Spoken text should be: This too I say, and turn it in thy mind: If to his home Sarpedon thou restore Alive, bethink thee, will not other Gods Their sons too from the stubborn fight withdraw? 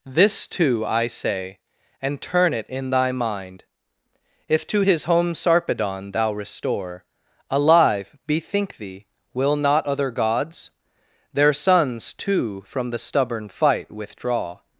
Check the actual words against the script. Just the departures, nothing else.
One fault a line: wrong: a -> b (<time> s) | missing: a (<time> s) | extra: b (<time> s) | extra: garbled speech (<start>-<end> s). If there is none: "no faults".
no faults